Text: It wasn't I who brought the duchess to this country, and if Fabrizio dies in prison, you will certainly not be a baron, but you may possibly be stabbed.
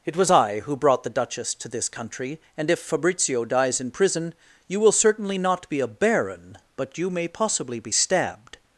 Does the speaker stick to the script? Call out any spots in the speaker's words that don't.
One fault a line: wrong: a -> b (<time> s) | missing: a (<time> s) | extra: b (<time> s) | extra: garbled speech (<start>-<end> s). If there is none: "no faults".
wrong: wasn't -> was (0.1 s)